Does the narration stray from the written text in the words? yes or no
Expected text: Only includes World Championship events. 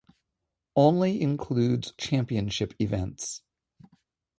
yes